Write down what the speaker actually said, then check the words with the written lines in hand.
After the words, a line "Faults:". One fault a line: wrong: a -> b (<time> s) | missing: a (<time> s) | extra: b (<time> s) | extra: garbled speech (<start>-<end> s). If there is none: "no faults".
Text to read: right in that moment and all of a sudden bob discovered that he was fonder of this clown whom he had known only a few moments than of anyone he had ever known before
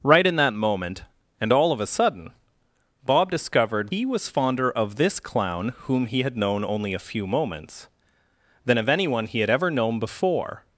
right in that moment and all of a sudden bob discovered he was fonder of this clown whom he had known only a few moments than of anyone he had ever known before
Faults:
missing: that (3.9 s)